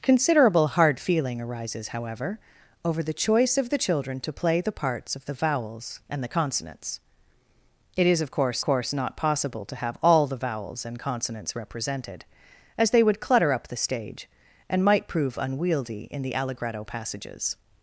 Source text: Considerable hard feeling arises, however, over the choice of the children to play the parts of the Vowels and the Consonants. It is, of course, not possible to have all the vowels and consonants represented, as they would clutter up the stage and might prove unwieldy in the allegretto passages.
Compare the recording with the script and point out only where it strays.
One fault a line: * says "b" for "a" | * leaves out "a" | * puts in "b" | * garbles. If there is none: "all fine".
* puts in "course"